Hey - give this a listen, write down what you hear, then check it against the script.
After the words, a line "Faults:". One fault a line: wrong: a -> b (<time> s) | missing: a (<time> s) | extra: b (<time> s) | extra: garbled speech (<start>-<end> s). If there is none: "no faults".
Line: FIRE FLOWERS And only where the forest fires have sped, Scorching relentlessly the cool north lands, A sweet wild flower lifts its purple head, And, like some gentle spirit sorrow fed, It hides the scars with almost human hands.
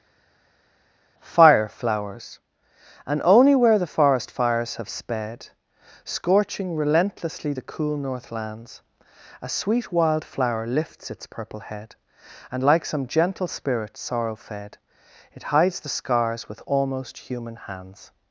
FIRE FLOWERS And only where the forest fires have sped, Scorching relentlessly the cool north lands, A sweet wild flower lifts its purple head, And, like some gentle spirit sorrow fed, It hides the scars with almost human hands.
Faults:
no faults